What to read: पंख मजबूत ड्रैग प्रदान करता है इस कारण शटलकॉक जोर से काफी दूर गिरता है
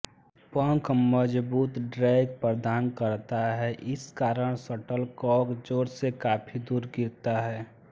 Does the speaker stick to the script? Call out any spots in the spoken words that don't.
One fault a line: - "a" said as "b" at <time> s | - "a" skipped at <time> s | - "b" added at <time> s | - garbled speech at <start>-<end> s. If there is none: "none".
none